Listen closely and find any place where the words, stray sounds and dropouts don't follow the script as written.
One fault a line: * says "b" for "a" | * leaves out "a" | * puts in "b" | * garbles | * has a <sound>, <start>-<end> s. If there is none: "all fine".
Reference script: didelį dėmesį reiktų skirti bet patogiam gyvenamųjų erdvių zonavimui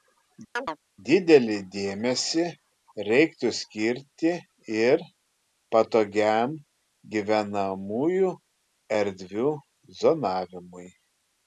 * has a chirp, 0.6-0.8 s
* says "ir" for "bet"